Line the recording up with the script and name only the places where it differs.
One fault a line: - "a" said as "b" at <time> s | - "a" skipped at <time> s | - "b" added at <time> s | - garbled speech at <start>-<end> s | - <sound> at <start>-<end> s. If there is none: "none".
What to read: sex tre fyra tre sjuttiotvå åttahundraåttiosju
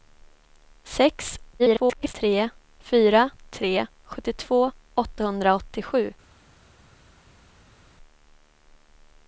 - garbled speech at 1.6-2.1 s